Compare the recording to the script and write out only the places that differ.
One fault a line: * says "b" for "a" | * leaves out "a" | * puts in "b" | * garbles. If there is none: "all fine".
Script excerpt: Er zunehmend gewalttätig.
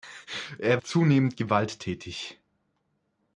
all fine